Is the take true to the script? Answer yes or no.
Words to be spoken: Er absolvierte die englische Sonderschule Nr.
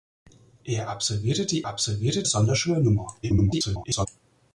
no